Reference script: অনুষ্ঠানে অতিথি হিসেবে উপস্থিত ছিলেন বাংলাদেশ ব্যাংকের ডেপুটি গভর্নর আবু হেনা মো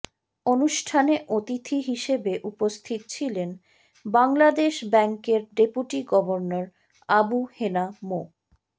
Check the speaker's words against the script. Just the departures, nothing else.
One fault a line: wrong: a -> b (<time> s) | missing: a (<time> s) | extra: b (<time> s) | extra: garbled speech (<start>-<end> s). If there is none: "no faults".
no faults